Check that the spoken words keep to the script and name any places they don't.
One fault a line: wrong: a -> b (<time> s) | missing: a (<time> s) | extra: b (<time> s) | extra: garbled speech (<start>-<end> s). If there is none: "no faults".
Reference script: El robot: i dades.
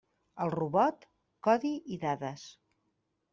extra: codi (1.5 s)